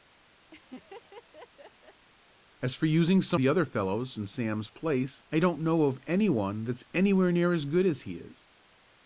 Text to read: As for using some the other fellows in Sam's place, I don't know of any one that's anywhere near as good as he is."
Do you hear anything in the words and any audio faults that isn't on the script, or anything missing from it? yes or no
yes